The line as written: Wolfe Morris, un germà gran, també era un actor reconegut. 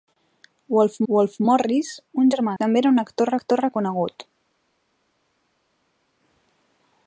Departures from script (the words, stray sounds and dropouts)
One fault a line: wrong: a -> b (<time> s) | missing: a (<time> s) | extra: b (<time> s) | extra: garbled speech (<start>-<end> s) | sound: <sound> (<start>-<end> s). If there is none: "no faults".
extra: wolfe (1.1 s)
missing: gran (2.5 s)
extra: actor (3.4 s)